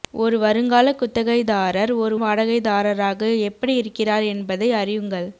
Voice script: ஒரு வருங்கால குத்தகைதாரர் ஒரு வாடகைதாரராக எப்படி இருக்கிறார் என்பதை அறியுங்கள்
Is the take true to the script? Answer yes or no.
yes